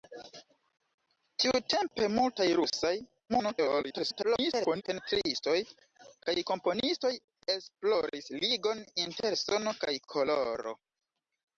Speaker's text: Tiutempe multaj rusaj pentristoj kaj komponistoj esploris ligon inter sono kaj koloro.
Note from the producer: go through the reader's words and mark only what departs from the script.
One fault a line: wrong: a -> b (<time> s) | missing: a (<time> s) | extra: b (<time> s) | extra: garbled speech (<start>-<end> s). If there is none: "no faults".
extra: garbled speech (3.3-4.8 s)